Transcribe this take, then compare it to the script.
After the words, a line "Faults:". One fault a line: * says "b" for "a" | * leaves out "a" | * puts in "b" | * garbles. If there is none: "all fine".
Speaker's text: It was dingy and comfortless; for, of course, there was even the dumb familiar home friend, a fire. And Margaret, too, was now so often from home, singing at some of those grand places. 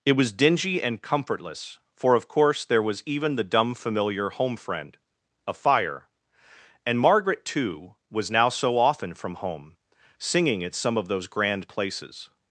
It was dingy and comfortless; for, of course, there was even the dumb familiar home friend, a fire. And Margaret, too, was now so often from home, singing at some of those grand places.
Faults:
all fine